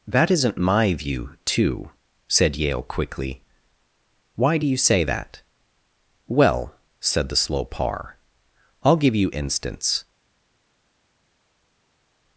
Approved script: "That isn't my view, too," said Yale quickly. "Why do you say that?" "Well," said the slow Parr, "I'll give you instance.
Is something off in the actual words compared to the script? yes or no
no